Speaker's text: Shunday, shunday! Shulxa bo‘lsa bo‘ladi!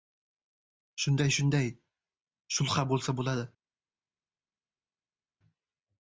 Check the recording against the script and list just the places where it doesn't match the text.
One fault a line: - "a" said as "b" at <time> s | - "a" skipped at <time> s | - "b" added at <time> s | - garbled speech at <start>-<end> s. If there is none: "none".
none